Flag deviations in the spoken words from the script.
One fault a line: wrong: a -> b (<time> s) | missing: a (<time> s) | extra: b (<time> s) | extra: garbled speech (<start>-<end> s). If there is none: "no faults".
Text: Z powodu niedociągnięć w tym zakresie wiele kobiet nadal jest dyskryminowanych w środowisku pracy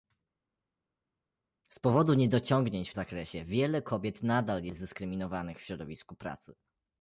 missing: tym (2.9 s)